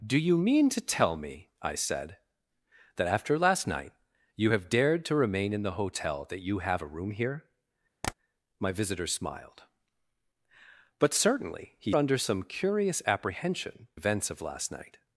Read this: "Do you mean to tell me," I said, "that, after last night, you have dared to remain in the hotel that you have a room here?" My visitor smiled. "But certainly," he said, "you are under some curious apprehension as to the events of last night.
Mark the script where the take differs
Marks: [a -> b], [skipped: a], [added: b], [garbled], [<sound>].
"Do you mean to tell me," I said, "that, after last night, you have dared to remain in the hotel that you have a room here?" [tap] My visitor smiled. "But certainly," he [skipped: said, "you are] under some curious apprehension [skipped: as to the] events of last night.